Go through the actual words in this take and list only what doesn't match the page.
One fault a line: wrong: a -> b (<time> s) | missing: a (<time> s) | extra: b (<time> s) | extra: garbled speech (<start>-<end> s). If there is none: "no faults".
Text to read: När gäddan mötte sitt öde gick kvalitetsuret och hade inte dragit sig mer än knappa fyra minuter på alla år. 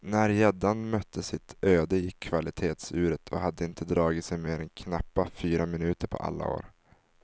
no faults